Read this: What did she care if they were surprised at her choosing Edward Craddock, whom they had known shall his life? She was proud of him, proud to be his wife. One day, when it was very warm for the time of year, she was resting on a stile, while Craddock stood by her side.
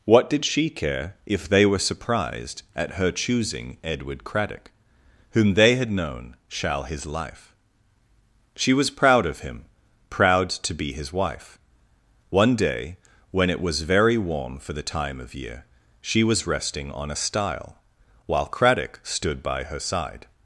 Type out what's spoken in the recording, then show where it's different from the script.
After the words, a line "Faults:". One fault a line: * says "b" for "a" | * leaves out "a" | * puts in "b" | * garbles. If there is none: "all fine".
What did she care if they were surprised at her choosing Edward Craddock, whom they had known shall his life? She was proud of him, proud to be his wife. One day, when it was very warm for the time of year, she was resting on a stile, while Craddock stood by her side.
Faults:
all fine